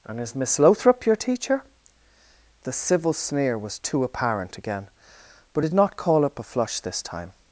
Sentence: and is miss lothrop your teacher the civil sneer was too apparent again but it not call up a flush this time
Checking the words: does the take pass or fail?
pass